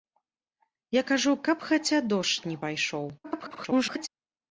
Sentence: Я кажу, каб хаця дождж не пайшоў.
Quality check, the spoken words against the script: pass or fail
fail